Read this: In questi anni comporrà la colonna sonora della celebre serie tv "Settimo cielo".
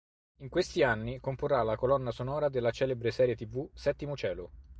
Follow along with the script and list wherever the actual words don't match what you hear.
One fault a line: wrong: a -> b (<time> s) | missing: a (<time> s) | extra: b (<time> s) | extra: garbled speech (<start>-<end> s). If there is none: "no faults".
no faults